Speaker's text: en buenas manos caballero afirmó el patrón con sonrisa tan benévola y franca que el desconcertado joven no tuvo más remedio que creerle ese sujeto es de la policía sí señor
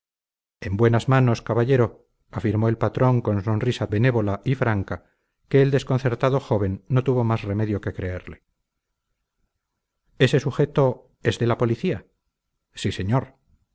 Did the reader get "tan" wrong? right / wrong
wrong